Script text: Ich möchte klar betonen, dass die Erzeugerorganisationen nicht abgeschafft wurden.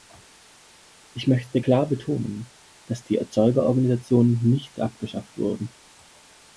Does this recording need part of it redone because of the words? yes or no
no